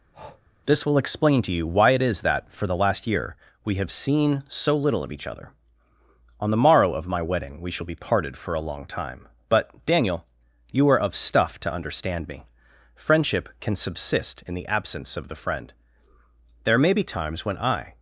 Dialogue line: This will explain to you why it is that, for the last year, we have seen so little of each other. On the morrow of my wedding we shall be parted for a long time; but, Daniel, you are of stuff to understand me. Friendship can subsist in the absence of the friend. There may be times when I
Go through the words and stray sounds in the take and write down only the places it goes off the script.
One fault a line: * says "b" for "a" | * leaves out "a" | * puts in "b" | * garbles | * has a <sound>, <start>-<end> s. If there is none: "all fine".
* has a breath, 0.1-0.4 s